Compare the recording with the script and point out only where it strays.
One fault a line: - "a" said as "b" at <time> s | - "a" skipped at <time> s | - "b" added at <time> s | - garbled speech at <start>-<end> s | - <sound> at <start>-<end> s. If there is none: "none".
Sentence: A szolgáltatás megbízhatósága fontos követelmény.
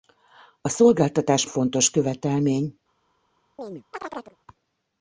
- "megbízhatósága" skipped at 1.5 s
- chirp at 3.6-4.4 s